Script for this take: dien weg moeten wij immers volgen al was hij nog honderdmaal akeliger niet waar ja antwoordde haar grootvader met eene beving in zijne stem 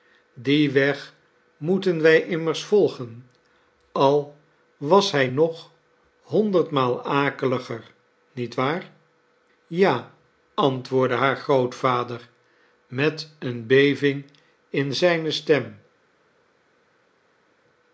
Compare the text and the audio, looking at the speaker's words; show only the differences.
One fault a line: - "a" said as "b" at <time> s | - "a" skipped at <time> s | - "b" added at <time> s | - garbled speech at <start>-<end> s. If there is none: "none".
none